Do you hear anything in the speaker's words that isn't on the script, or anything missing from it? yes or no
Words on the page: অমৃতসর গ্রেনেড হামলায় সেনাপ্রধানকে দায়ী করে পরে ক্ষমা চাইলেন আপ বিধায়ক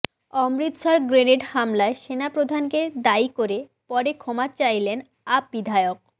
no